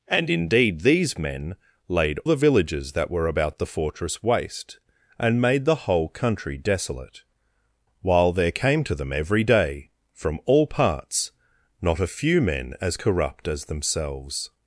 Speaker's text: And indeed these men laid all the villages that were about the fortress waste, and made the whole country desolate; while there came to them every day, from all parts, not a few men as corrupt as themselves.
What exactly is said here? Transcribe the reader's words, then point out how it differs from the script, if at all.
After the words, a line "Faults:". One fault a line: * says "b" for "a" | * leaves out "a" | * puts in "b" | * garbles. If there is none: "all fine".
And indeed these men laid the villages that were about the fortress waste, and made the whole country desolate; while there came to them every day, from all parts, not a few men as corrupt as themselves.
Faults:
* leaves out "all"